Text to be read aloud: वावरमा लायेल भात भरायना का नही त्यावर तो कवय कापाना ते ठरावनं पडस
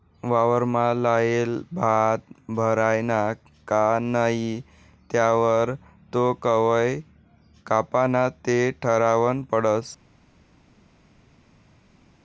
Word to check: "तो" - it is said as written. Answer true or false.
true